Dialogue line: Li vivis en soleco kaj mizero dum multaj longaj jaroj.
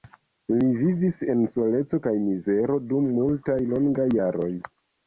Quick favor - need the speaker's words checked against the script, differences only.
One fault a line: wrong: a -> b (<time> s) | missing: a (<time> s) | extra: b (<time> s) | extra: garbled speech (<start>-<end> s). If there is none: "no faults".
no faults